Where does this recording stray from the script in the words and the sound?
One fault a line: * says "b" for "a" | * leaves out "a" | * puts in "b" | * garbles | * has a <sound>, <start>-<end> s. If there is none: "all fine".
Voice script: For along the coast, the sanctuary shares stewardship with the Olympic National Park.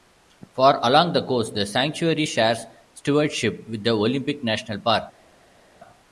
all fine